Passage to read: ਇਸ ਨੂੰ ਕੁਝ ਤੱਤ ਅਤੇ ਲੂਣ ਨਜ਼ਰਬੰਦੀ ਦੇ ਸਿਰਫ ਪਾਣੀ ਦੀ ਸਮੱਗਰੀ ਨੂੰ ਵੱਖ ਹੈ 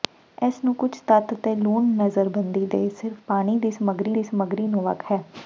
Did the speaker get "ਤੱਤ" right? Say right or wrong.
right